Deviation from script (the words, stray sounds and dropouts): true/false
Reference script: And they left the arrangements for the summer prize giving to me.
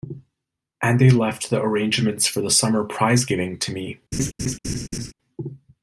true